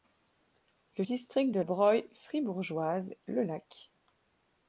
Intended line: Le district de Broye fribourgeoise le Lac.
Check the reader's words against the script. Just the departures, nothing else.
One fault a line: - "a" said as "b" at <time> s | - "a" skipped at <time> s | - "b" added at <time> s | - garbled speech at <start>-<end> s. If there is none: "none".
none